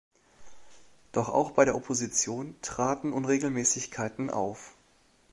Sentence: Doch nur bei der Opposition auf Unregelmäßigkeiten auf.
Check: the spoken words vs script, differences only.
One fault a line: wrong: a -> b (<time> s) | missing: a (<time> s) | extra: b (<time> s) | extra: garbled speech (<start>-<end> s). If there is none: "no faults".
wrong: nur -> auch (1.3 s)
wrong: auf -> traten (2.6 s)